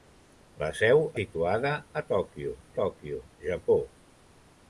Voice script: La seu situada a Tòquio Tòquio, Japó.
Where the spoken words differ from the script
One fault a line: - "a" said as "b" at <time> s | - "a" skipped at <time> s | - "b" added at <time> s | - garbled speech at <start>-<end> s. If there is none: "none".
none